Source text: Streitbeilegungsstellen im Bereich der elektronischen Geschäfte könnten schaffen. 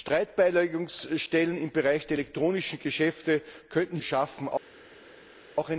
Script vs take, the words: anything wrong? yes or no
no